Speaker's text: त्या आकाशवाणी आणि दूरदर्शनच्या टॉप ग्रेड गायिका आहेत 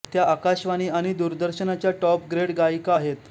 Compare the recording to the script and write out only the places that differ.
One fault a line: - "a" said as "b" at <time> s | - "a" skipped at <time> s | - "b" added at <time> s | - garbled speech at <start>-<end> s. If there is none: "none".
none